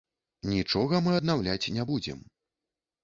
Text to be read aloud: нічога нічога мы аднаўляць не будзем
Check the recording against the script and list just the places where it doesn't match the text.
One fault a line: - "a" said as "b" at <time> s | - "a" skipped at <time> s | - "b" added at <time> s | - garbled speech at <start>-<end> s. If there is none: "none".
- "нічога" skipped at 1.0 s